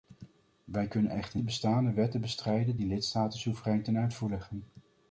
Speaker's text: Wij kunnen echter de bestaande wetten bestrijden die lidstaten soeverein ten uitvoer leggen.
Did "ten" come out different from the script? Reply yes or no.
no